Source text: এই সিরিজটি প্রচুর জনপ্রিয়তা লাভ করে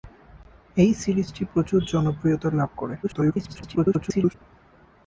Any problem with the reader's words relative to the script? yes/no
yes